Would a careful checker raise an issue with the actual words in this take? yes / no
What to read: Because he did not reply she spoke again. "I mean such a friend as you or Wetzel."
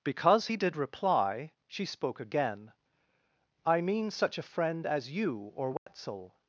yes